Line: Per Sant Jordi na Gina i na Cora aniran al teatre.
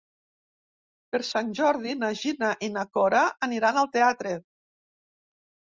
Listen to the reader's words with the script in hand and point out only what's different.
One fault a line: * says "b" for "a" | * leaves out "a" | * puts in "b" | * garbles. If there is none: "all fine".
all fine